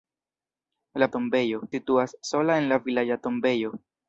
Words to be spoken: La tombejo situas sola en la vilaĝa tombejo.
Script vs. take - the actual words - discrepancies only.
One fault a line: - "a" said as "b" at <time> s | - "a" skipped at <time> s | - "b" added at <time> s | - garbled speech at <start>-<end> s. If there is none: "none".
none